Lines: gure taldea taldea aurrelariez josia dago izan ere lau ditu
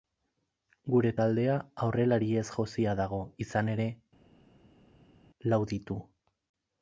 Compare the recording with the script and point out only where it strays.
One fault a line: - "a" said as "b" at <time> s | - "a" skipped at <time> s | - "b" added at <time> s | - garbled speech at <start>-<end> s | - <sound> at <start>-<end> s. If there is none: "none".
- "taldea" skipped at 1.6 s